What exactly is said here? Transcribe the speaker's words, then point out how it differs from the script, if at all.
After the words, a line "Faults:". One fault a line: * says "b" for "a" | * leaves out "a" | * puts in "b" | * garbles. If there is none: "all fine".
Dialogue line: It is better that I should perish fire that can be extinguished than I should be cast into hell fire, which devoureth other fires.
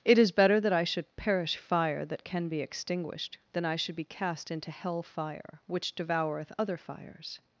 It is better that I should perish fire that can be extinguished than I should be cast into hell fire, which devoureth other fires.
Faults:
all fine